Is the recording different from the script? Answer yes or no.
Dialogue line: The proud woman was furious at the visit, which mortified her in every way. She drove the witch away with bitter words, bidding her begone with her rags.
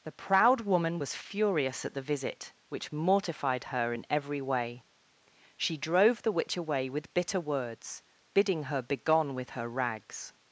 no